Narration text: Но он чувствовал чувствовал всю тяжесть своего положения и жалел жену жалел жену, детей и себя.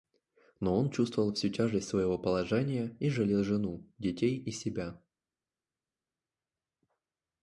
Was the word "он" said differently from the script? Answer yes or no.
no